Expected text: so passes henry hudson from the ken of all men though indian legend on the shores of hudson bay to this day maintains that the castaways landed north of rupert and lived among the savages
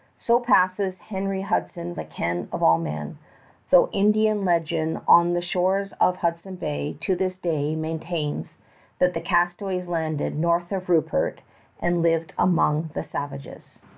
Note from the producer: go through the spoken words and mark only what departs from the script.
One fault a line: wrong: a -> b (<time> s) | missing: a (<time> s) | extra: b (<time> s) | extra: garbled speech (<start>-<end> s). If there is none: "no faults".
missing: from (1.9 s)